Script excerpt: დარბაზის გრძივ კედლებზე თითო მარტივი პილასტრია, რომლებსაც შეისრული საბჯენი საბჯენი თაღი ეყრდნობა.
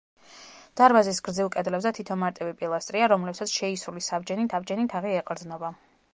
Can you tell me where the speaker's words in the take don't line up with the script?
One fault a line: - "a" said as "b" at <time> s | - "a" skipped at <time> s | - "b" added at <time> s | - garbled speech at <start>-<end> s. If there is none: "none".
none